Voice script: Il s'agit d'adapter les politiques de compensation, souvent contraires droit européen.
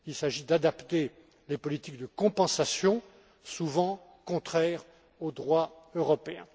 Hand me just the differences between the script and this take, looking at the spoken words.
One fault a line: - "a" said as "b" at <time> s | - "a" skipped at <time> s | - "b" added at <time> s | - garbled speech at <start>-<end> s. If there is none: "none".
- "au" added at 5.2 s